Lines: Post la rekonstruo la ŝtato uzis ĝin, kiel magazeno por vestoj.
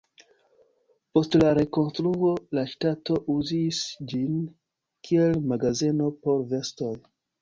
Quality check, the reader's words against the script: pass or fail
pass